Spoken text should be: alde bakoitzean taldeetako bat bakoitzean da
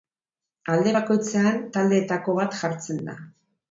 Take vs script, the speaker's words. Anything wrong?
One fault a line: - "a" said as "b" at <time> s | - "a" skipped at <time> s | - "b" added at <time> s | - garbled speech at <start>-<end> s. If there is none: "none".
- "bakoitzean" said as "jartzen" at 2.6 s